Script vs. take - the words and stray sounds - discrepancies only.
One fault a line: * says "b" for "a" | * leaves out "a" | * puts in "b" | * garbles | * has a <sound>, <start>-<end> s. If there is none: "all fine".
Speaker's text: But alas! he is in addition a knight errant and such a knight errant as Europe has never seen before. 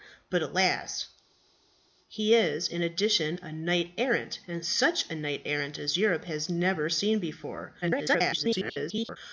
* garbles